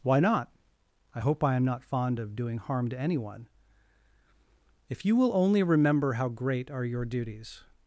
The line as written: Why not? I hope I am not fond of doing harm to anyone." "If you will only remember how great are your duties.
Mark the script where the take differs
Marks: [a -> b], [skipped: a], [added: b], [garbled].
Why not? I hope I am not fond of doing harm to anyone." "If you will only remember how great are your duties.